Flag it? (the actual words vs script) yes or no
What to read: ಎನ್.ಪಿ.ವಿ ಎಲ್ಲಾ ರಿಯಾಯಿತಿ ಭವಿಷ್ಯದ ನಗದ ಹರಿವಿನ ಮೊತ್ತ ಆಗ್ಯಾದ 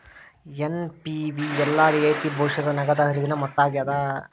no